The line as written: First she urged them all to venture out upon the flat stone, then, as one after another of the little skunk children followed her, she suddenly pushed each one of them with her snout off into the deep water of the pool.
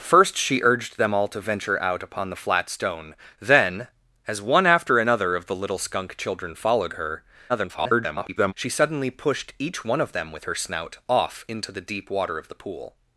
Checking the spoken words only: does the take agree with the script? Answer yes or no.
no